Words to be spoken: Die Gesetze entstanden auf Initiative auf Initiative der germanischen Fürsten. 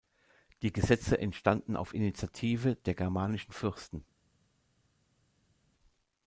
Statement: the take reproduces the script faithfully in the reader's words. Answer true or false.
false